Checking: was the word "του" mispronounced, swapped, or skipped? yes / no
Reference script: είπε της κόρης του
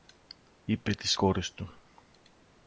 no